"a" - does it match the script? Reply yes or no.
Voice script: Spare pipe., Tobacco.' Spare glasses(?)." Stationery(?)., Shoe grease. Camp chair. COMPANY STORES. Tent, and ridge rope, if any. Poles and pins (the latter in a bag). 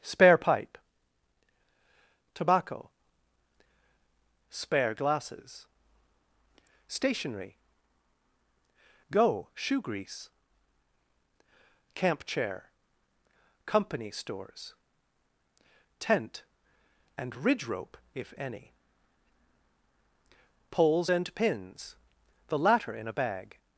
yes